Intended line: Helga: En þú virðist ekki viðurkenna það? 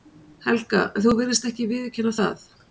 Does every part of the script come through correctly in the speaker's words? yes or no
yes